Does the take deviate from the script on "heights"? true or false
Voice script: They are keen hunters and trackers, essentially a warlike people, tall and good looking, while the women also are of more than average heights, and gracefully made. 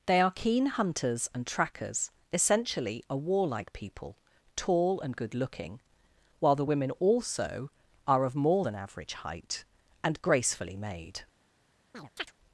true